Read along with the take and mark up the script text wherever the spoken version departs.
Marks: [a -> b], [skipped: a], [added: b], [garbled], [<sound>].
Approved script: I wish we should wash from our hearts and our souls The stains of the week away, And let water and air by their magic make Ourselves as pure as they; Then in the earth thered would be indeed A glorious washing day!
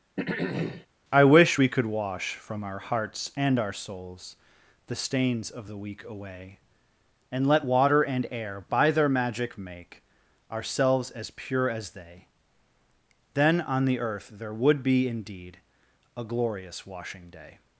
[throat clearing] I wish we [should -> could] wash from our hearts and our souls The stains of the week away, And let water and air by their magic make Ourselves as pure as they; Then [in -> on] the earth [thered -> there] would be indeed A glorious washing day!